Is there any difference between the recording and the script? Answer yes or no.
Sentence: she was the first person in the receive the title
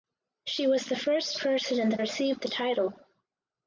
no